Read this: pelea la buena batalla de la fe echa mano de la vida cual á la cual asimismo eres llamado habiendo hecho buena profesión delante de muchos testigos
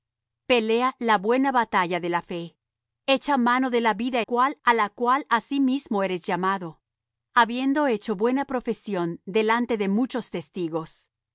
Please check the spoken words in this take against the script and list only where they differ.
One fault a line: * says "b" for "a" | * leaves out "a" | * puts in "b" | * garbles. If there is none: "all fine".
all fine